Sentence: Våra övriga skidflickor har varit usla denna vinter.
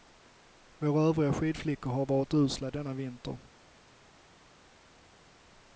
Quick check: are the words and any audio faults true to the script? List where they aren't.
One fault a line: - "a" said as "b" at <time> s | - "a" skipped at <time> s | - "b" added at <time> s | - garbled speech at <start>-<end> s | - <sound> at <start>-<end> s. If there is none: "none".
none